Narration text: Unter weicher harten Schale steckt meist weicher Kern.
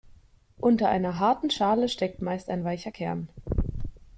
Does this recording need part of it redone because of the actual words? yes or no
yes